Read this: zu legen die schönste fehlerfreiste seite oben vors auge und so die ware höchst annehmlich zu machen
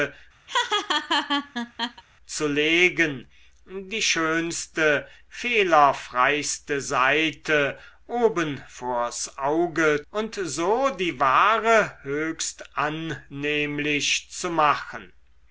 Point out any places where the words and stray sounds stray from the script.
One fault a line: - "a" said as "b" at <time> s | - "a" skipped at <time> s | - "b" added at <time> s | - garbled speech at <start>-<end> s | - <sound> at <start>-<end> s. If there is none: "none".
- laugh at 0.5-2.0 s